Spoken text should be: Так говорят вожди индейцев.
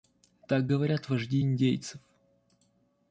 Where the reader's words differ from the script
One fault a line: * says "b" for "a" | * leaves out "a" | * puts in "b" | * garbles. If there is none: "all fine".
all fine